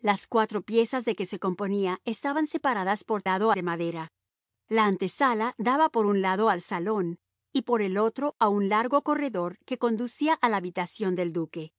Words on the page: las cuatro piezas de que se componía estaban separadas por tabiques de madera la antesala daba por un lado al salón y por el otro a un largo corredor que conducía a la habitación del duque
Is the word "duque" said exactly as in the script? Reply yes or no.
yes